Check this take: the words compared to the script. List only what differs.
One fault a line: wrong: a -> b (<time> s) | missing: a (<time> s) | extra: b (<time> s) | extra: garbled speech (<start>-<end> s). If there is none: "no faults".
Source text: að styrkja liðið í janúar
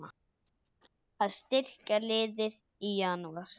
no faults